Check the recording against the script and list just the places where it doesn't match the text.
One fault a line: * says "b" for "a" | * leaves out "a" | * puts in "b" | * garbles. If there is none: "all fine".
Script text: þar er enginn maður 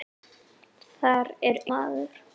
* leaves out "enginn"